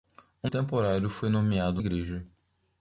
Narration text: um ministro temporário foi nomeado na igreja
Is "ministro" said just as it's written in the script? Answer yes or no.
no